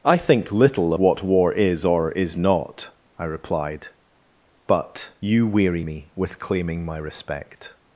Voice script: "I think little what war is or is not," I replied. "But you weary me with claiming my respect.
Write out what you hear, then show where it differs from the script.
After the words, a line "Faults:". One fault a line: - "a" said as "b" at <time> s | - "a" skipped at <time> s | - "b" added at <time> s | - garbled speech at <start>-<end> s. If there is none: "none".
"I think little what war is or is not," I replied. "But you weary me with claiming my respect.
Faults:
none